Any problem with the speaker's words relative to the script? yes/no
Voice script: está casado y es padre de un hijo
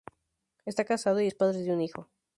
no